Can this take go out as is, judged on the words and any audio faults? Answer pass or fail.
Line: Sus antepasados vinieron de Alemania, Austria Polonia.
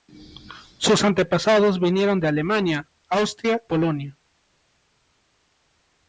pass